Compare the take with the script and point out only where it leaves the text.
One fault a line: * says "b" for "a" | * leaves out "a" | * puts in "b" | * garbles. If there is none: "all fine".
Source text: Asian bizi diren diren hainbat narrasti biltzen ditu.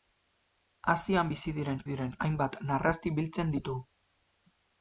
all fine